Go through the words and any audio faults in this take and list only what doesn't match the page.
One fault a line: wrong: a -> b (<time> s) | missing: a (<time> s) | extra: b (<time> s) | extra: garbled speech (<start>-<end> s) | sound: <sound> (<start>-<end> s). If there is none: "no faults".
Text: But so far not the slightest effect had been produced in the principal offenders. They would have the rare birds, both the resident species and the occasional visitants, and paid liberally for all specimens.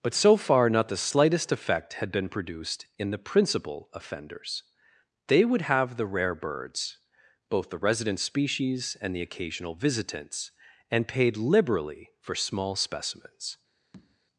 wrong: all -> small (12.3 s)
sound: tap (13.9-14.2 s)